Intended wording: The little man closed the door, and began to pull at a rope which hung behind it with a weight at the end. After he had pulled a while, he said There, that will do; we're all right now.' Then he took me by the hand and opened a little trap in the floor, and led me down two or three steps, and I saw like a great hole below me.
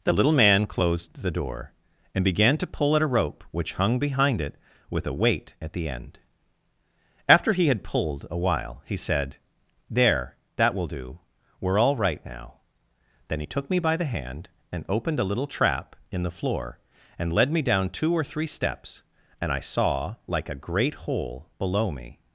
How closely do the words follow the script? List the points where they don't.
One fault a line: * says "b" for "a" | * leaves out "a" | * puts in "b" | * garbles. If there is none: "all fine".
all fine